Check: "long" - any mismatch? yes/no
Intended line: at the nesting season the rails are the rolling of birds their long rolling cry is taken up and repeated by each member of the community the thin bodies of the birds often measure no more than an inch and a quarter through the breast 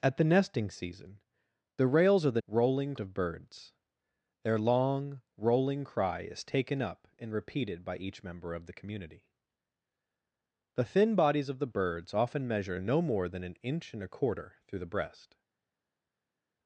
no